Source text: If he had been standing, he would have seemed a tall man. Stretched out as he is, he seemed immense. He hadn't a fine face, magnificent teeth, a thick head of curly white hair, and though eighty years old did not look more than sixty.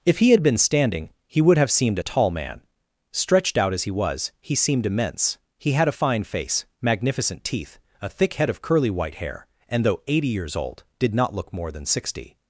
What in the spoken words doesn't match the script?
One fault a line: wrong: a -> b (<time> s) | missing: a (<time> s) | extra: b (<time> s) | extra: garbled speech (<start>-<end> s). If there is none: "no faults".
wrong: is -> was (3.9 s)
wrong: hadn't -> had (5.7 s)